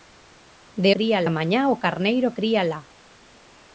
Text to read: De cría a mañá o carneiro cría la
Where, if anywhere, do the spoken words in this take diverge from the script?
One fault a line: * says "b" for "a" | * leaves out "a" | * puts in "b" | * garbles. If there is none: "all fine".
all fine